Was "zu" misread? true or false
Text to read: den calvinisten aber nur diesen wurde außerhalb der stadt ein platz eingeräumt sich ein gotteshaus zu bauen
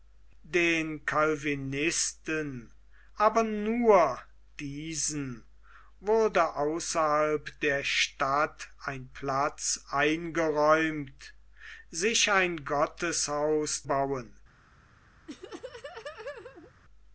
true